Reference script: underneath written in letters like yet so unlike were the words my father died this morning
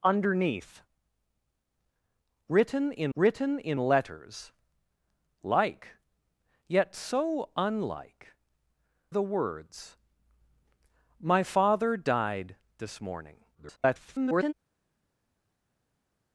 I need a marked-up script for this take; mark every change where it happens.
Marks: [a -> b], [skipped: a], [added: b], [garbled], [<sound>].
underneath written in [added: written in] letters like yet so unlike [skipped: were] the words my father died this morning [garbled]